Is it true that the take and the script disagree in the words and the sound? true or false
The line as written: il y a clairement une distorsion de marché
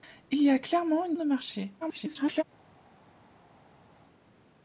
true